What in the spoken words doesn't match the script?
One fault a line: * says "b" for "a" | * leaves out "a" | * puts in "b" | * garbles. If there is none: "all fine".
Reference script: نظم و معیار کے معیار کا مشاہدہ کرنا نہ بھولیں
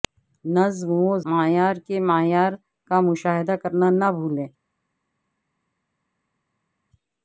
all fine